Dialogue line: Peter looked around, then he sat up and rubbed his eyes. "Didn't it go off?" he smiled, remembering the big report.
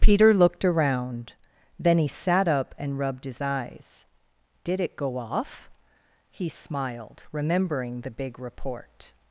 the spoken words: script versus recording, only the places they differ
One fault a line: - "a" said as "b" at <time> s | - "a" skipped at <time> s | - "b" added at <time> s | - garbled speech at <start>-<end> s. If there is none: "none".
- "Didn't" said as "Did" at 4.6 s